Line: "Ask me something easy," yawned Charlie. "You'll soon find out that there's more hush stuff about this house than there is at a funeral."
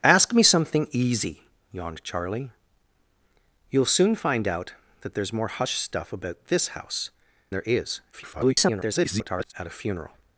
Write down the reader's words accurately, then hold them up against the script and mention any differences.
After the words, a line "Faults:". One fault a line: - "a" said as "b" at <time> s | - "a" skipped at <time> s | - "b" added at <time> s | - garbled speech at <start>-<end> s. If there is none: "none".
"Ask me something easy," yawned Charlie. "You'll soon find out that there's more hush stuff about this house there is [garbled] at a funeral."
Faults:
- "than" skipped at 7.1 s
- garbled speech at 8.1-9.5 s